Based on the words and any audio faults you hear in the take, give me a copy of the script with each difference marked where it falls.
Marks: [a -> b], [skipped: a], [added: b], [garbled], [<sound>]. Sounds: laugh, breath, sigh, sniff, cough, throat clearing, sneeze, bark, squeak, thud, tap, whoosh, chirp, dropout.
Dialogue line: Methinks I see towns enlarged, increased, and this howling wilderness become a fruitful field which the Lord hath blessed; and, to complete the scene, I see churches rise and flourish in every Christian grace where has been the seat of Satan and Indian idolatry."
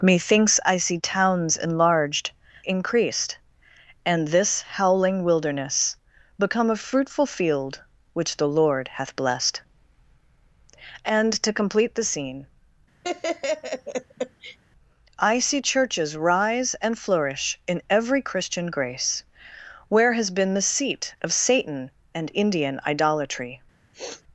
Methinks I see towns enlarged, increased, and this howling wilderness become a fruitful field which the Lord hath blessed; and, to complete the scene, [laugh] I see churches rise and flourish in every Christian grace where has been the seat of Satan and Indian idolatry." [sniff]